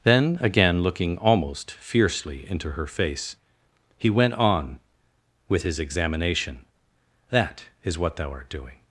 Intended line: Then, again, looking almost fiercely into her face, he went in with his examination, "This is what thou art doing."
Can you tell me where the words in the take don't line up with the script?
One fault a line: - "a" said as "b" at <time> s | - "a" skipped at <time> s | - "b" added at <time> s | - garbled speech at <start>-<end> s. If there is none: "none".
- "in" said as "on" at 4.3 s
- "This" said as "That" at 7.3 s